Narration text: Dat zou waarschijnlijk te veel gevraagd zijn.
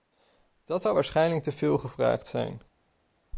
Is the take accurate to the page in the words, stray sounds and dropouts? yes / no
yes